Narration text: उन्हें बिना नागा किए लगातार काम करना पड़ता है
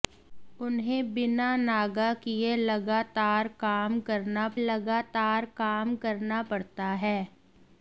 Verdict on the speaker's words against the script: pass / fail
fail